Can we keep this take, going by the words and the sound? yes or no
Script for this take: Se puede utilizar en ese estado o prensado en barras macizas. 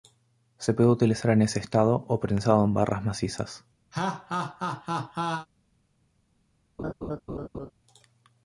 no